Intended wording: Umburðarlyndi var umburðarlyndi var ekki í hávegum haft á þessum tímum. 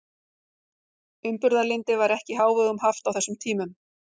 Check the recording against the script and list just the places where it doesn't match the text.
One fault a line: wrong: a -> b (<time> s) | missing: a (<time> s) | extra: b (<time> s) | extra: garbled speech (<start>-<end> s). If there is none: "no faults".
missing: umburðarlyndi var (2.1 s)